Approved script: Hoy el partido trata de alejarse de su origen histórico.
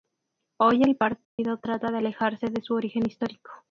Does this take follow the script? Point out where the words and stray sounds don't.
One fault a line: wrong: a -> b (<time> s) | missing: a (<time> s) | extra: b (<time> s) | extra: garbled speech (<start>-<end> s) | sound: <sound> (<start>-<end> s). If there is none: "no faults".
sound: dropout (1.2-1.4 s)